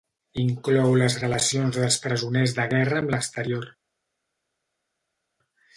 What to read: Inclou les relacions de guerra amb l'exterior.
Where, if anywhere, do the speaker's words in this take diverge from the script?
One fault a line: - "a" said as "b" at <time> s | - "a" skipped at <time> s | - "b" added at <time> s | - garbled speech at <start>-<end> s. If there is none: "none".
- "dels presoners" added at 1.8 s